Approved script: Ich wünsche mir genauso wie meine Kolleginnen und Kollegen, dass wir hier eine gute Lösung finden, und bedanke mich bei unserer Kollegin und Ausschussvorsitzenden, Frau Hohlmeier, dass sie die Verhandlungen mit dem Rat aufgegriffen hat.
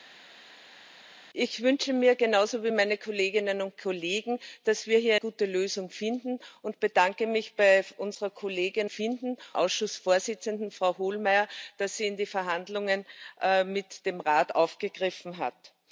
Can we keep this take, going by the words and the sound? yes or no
no